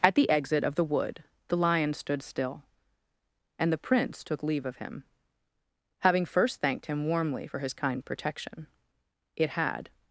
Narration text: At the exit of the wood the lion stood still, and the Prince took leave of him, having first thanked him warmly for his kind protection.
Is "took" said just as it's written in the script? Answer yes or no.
yes